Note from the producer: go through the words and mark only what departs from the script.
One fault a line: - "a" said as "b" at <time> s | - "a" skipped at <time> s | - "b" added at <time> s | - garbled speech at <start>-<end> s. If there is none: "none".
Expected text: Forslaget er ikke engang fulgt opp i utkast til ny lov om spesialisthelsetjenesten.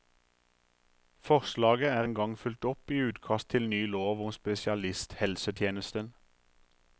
- "ikke" skipped at 2.0 s